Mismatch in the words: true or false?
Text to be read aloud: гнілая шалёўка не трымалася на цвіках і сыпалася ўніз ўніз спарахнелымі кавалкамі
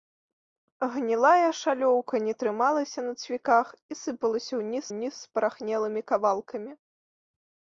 false